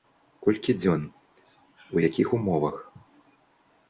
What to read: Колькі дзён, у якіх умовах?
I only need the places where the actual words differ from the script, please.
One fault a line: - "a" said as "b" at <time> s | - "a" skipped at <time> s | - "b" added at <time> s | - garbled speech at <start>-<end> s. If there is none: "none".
none